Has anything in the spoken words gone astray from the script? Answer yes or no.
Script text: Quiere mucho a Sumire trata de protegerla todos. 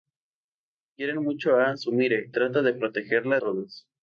no